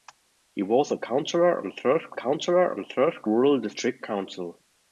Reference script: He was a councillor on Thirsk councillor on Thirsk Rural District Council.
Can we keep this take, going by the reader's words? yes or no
yes